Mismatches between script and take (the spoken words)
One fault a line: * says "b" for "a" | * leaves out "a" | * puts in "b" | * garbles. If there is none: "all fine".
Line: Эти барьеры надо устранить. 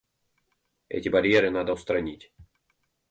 all fine